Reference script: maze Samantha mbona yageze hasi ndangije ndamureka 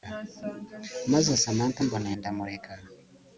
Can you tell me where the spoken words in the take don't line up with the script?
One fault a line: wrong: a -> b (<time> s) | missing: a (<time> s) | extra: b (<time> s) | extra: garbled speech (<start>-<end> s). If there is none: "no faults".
missing: yageze hasi ndangije (2.1 s)